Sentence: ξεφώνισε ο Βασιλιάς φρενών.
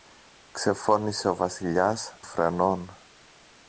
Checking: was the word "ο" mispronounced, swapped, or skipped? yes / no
no